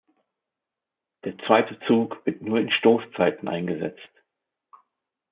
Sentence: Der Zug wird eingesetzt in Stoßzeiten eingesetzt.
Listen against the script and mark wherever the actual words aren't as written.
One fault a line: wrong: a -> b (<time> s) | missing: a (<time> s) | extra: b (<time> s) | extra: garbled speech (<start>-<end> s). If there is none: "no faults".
extra: zweite (1.4 s)
wrong: eingesetzt -> nur (2.4 s)